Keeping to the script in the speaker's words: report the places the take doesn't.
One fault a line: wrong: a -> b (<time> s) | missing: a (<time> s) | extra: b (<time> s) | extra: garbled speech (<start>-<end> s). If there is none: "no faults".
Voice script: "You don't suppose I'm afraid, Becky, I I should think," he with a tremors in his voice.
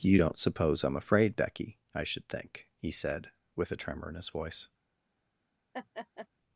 missing: I (2.0 s)
extra: said (2.9 s)
wrong: tremors -> tremor (3.8 s)